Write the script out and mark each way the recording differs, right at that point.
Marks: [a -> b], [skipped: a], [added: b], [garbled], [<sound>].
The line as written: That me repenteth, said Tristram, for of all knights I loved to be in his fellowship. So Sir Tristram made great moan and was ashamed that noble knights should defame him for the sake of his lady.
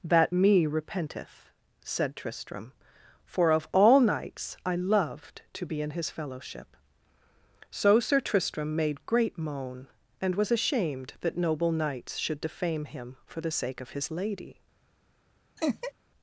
That me repenteth, said Tristram, for of all knights I loved to be in his fellowship. So Sir Tristram made great moan and was ashamed that noble knights should defame him for the sake of his lady. [laugh]